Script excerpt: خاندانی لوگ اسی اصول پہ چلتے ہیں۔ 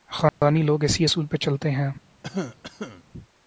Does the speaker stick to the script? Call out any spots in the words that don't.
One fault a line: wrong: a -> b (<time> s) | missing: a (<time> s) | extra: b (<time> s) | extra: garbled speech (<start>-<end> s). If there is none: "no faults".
no faults